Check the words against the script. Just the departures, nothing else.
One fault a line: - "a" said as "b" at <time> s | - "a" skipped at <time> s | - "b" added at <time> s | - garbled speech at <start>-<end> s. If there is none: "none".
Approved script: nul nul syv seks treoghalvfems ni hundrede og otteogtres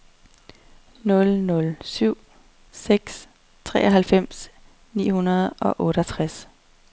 none